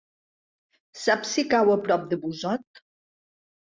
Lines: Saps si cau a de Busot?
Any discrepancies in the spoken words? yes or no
yes